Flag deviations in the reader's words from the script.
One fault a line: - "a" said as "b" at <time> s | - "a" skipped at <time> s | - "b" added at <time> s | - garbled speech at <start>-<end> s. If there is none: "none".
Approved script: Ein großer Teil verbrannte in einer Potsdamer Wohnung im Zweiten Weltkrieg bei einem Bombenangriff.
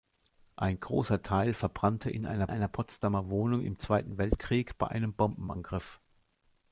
- "einer" added at 2.5 s